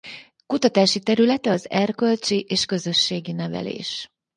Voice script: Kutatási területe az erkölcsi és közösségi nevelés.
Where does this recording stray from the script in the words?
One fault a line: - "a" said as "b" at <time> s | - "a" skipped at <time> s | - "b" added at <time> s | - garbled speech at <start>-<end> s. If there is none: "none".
none